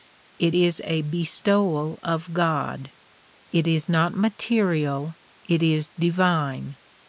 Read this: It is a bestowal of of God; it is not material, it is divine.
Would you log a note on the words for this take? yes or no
yes